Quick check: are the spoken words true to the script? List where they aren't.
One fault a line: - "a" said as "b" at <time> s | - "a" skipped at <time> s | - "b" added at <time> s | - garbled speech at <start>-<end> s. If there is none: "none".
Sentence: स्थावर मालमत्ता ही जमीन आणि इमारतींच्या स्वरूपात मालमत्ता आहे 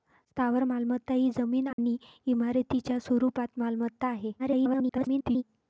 - garbled speech at 4.4-5.4 s